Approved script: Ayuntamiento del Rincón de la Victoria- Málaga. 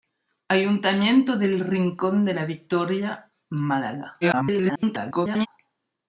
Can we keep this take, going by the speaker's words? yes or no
no